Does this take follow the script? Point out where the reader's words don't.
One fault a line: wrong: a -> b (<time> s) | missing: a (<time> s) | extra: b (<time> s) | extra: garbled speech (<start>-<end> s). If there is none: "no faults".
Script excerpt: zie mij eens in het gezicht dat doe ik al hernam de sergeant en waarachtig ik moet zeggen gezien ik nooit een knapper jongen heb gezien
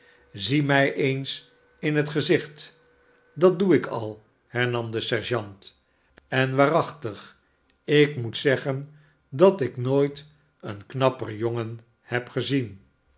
wrong: gezien -> dat (9.3 s)